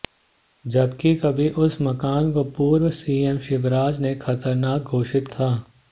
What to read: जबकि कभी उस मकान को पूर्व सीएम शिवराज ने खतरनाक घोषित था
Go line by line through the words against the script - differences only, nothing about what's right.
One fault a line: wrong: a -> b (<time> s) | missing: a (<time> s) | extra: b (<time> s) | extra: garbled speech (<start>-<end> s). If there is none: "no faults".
no faults